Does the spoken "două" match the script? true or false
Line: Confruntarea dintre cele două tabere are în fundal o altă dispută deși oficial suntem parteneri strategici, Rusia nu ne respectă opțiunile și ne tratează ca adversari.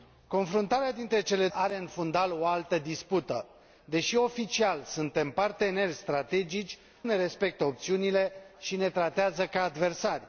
false